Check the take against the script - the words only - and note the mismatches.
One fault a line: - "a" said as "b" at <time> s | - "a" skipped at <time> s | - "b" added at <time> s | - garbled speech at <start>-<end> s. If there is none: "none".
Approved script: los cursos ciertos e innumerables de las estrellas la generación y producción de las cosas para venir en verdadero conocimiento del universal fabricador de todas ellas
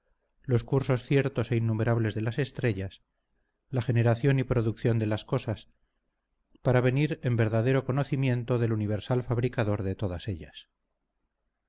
none